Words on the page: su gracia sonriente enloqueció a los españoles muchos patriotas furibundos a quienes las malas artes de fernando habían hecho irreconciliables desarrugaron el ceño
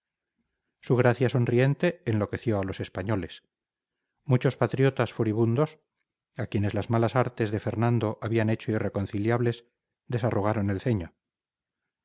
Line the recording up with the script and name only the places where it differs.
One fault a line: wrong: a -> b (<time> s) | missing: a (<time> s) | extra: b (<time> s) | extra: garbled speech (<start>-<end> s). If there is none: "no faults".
no faults